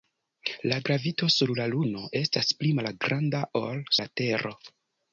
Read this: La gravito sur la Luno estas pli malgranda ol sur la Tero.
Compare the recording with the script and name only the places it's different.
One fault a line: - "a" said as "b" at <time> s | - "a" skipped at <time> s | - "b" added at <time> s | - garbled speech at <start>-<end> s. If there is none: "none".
- "sur" skipped at 3.8 s